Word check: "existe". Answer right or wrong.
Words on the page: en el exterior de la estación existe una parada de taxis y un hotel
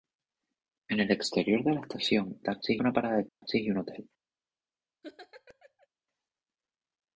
wrong